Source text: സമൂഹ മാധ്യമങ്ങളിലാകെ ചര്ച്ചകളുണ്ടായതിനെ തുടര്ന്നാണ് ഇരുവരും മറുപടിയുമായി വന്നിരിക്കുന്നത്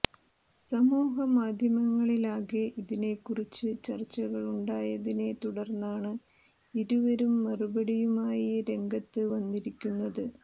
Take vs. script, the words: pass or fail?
fail